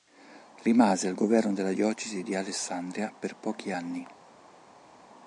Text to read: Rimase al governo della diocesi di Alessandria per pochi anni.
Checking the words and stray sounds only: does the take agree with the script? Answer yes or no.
yes